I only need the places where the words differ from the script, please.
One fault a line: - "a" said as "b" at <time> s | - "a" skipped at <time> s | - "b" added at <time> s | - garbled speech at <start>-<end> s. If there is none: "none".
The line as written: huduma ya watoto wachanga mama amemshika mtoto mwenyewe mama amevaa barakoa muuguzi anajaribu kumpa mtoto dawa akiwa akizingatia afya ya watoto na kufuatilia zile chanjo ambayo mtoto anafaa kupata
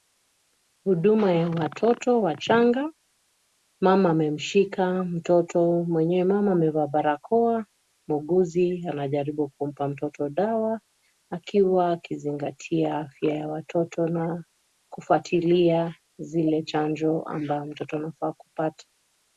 none